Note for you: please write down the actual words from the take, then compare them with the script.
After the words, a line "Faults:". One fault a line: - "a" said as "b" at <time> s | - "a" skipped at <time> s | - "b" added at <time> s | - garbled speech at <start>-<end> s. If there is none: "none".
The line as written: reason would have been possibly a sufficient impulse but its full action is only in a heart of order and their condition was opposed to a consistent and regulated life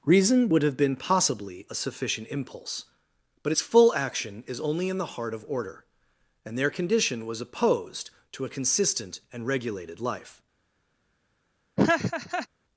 reason would have been possibly a sufficient impulse but its full action is only in the heart of order and their condition was opposed to a consistent and regulated life
Faults:
- "a" said as "the" at 5.0 s